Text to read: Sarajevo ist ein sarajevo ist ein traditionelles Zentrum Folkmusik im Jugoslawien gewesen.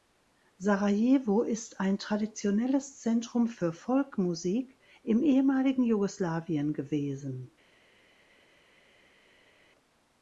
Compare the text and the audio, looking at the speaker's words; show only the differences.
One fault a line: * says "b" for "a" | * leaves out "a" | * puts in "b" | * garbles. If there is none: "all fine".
* leaves out "sarajevo ist ein"
* puts in "für"
* puts in "ehemaligen"